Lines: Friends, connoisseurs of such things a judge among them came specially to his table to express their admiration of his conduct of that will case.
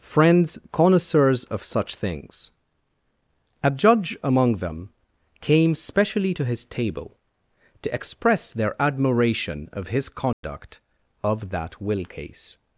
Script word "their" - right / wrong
right